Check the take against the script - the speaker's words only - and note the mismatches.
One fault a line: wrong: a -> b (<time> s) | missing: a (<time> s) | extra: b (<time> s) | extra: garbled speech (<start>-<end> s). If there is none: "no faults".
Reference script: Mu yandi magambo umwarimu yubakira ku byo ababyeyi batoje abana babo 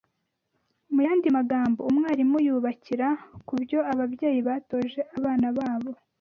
no faults